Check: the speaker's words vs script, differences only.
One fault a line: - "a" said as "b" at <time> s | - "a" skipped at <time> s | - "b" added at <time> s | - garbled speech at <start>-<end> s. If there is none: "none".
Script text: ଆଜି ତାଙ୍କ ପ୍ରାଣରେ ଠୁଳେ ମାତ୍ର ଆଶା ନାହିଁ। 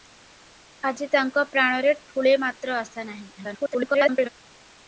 - garbled speech at 3.4-4.3 s